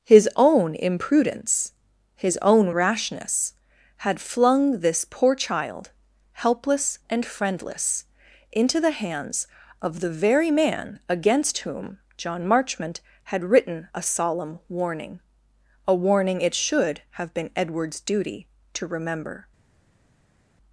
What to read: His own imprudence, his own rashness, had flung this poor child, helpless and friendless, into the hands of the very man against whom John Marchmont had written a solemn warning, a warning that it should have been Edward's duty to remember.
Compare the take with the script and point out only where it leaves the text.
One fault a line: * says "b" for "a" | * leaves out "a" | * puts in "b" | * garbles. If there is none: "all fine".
* leaves out "that"